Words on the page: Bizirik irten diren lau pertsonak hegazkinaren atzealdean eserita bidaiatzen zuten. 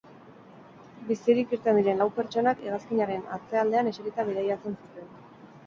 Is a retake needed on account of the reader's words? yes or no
no